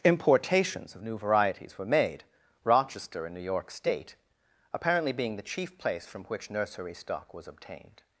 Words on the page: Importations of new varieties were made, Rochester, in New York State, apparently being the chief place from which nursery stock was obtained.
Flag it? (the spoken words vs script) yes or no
no